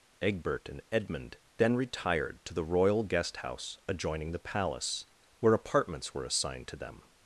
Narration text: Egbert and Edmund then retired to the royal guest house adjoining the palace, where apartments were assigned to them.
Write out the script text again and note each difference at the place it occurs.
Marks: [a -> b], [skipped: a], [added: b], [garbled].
Egbert and Edmund then retired to the royal guest house adjoining the palace, where apartments were assigned to them.